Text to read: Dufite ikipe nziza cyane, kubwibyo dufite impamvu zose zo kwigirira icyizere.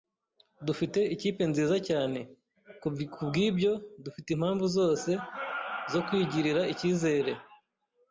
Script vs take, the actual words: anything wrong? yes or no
no